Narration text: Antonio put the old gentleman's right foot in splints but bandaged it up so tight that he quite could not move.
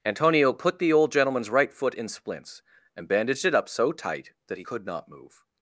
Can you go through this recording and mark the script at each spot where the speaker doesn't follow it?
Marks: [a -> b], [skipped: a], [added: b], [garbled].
Antonio put the old gentleman's right foot in splints [but -> and] bandaged it up so tight that he [skipped: quite] could not move.